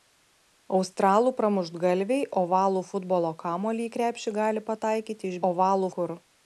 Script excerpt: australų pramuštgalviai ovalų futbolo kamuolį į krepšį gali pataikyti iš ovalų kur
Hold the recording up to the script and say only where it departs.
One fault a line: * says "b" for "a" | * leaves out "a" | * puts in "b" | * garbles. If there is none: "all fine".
all fine